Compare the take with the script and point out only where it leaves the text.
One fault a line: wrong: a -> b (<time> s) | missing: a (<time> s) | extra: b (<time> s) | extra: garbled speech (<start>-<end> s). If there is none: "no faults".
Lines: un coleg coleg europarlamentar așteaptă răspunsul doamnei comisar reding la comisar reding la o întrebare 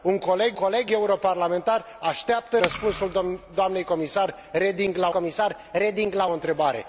no faults